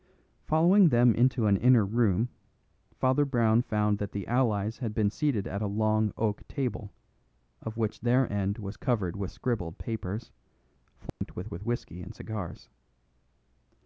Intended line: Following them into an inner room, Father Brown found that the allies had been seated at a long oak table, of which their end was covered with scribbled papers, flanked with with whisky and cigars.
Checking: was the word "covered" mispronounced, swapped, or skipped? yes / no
no